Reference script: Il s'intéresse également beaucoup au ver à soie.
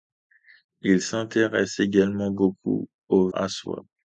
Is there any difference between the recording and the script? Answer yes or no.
yes